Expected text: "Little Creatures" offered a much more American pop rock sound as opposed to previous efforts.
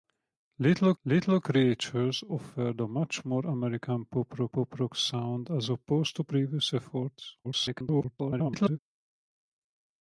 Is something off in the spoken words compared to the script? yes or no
yes